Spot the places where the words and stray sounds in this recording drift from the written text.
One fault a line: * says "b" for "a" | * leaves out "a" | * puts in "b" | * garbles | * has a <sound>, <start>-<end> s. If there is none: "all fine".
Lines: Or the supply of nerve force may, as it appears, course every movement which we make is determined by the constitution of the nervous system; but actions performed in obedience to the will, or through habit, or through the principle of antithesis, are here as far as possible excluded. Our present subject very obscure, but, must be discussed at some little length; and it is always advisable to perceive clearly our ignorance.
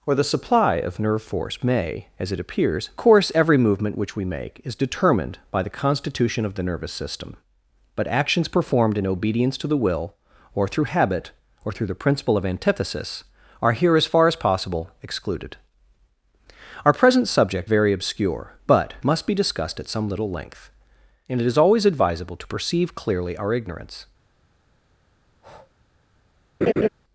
* has a breath, 25.3-25.7 s
* has a laugh, 26.6-26.9 s